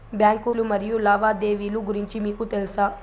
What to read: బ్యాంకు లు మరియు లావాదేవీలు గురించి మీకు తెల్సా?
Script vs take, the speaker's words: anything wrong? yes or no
no